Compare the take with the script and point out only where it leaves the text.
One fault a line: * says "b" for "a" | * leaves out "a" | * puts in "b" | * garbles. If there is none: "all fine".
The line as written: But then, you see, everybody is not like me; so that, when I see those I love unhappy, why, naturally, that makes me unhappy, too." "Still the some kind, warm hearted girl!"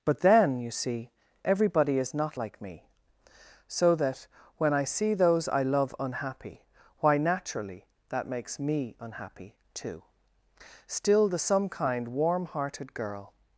all fine